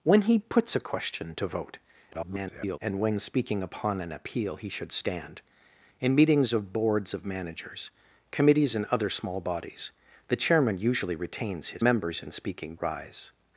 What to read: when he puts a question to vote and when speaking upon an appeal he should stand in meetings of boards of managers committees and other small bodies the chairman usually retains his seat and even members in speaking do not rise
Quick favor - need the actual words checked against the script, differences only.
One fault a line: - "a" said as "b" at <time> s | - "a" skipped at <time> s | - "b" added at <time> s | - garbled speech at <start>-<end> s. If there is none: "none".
- garbled speech at 2.1-2.8 s
- "seat and even" skipped at 11.8 s
- "do not" skipped at 12.7 s